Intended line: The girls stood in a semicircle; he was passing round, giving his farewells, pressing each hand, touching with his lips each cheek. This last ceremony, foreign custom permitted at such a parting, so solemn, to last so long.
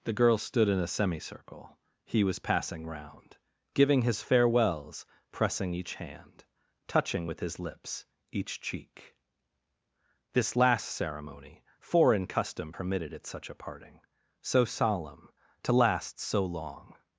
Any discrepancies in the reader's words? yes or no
no